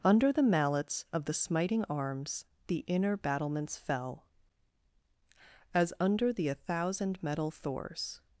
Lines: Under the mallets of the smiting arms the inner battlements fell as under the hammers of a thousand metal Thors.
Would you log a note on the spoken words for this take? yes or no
yes